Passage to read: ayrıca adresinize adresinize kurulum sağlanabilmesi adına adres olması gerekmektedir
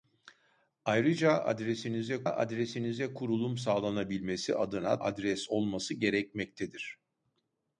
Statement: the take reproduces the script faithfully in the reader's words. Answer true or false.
true